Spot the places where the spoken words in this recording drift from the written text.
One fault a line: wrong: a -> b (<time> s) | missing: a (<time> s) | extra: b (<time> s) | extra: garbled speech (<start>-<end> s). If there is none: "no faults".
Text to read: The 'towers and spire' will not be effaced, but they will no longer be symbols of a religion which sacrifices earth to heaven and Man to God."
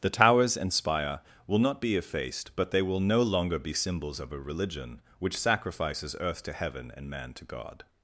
no faults